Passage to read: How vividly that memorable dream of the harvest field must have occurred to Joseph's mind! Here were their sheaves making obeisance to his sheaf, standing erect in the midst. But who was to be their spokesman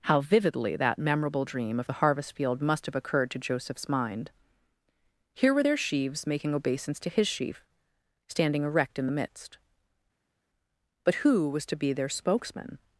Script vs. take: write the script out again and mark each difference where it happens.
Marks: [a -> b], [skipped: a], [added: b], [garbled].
How vividly that memorable dream of the harvest field must have occurred to Joseph's mind! Here were their sheaves making obeisance to his sheaf, standing erect in the midst. But who was to be their spokesman